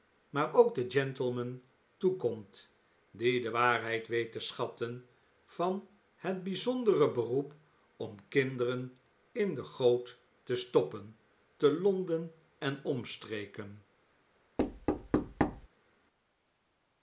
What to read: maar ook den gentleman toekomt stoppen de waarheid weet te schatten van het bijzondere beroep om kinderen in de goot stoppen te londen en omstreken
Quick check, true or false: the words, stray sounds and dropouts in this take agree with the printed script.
false